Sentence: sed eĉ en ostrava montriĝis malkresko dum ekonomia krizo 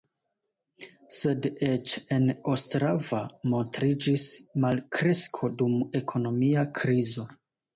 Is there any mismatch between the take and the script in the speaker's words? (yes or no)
no